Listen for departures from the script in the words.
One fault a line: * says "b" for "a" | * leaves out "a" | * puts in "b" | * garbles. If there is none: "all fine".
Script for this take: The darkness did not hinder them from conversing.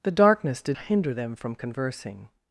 * leaves out "not"